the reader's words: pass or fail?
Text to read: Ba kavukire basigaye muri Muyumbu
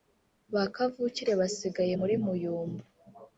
pass